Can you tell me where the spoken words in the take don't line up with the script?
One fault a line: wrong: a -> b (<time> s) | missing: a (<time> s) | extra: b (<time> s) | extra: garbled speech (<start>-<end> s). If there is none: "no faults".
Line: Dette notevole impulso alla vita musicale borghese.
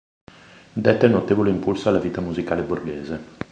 no faults